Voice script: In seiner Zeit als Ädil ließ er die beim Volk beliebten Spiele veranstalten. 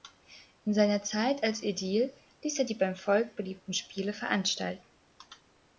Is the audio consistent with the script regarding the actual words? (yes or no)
yes